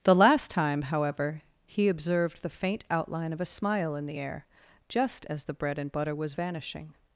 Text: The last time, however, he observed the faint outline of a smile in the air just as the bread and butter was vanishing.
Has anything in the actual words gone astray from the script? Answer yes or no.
no